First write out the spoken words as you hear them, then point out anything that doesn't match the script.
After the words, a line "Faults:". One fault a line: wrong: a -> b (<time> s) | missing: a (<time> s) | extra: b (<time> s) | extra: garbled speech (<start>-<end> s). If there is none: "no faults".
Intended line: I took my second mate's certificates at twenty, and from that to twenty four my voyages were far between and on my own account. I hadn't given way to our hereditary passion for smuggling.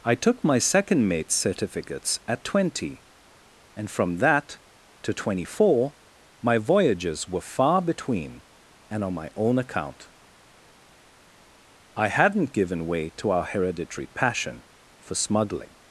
I took my second mate's certificates at twenty, and from that to twenty four my voyages were far between and on my own account. I hadn't given way to our hereditary passion for smuggling.
Faults:
no faults